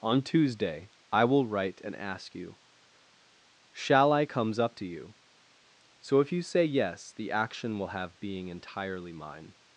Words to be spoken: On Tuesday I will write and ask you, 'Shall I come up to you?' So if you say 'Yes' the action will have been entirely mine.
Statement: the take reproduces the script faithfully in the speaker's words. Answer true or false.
false